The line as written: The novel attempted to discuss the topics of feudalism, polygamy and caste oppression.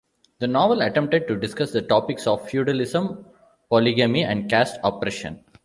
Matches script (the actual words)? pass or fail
pass